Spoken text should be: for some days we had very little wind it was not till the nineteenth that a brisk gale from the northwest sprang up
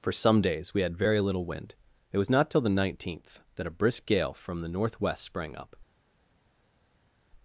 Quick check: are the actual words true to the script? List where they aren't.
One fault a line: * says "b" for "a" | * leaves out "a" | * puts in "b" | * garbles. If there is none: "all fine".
all fine